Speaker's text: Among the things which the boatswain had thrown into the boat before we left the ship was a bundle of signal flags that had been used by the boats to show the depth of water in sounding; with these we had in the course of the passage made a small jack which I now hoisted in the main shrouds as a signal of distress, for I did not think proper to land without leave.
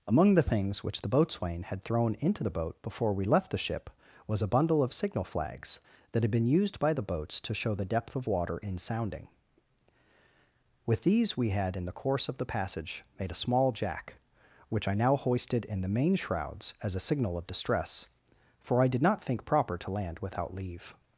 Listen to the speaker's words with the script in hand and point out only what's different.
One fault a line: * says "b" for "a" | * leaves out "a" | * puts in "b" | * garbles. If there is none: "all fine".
all fine